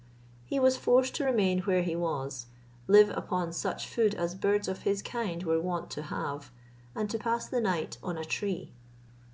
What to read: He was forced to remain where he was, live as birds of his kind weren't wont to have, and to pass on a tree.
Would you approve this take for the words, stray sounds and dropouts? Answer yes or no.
no